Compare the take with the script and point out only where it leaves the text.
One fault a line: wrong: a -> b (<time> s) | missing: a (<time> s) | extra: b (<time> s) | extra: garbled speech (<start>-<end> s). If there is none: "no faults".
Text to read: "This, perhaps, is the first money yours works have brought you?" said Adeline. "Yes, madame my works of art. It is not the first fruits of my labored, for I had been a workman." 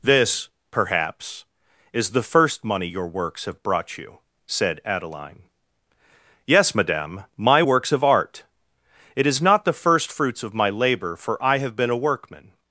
wrong: yours -> your (2.9 s)
wrong: labored -> labor (10.7 s)
wrong: had -> have (11.6 s)